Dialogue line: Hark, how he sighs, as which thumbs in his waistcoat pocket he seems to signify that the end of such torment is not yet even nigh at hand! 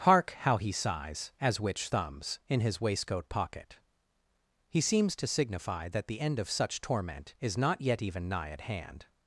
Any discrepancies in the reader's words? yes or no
no